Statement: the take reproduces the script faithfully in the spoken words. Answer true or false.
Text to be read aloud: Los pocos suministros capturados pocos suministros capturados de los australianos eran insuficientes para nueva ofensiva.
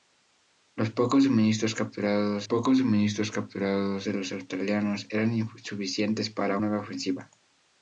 true